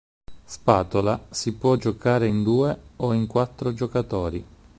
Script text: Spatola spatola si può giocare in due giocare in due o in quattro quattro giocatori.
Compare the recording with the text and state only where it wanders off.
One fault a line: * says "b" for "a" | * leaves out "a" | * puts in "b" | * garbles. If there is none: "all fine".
* leaves out "spatola"
* leaves out "giocare in due"
* leaves out "quattro"